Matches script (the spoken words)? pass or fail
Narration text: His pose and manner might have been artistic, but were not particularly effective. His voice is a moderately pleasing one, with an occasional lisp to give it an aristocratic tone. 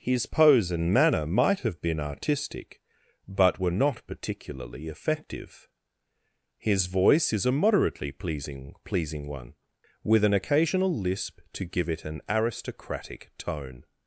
fail